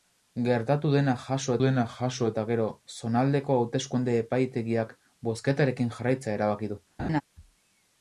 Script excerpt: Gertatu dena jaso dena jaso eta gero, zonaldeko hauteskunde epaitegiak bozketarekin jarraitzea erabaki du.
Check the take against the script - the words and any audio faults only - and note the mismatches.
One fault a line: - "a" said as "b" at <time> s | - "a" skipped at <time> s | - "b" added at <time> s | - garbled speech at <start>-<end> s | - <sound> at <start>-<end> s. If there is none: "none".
- laugh at 7.0-7.2 s